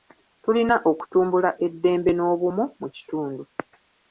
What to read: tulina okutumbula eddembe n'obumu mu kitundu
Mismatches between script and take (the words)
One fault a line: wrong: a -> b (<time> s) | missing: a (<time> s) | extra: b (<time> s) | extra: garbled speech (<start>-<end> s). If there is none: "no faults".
no faults